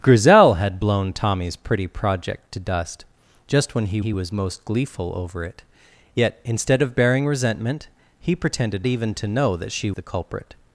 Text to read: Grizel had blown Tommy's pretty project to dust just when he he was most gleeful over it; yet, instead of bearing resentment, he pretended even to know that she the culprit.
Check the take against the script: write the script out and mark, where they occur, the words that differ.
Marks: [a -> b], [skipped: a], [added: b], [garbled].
Grizel had blown Tommy's pretty project to dust just when he he was most gleeful over it; yet, instead of bearing resentment, he pretended even to know that she the culprit.